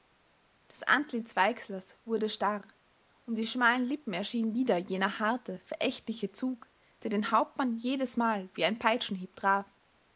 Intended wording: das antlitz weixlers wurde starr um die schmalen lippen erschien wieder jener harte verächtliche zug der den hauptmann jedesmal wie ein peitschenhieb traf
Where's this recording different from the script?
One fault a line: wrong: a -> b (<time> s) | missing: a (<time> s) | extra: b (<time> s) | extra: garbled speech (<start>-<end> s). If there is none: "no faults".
no faults